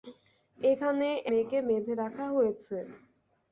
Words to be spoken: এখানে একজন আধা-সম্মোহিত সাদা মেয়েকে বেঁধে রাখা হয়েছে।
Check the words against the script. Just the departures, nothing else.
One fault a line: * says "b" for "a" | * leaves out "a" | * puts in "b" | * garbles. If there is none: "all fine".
* leaves out "একজন আধা-সম্মোহিত সাদা"